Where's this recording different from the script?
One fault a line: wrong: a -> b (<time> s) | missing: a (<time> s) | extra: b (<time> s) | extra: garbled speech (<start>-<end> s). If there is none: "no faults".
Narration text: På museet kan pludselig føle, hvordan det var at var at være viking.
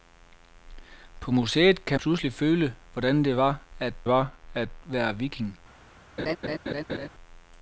no faults